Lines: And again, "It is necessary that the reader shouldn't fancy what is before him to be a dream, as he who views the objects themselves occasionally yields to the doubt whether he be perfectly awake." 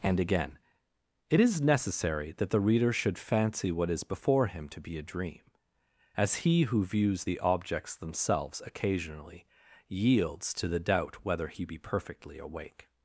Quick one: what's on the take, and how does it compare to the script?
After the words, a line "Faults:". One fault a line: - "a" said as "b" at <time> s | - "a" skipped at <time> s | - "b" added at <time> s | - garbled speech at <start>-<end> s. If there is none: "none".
And again, "It is necessary that the reader should fancy what is before him to be a dream, as he who views the objects themselves occasionally yields to the doubt whether he be perfectly awake."
Faults:
- "shouldn't" said as "should" at 2.9 s